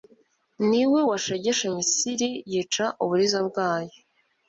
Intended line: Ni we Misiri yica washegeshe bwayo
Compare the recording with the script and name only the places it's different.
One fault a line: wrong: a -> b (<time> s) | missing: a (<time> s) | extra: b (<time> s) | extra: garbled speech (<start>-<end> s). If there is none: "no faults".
extra: washegeshe (1.1 s)
wrong: washegeshe -> uburiza (3.0 s)